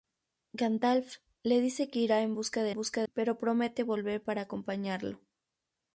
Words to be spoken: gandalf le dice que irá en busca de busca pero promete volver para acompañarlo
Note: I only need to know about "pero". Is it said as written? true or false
true